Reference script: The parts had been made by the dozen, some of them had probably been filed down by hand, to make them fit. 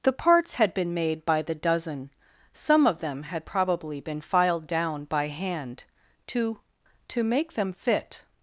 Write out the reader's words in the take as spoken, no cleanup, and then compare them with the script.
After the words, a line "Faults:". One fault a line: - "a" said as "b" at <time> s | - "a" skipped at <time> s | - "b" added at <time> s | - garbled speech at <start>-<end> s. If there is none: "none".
The parts had been made by the dozen, some of them had probably been filed down by hand, to to make them fit.
Faults:
- "to" added at 7.1 s